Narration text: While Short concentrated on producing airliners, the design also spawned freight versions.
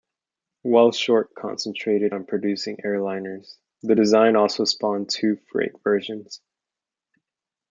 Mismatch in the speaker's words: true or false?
true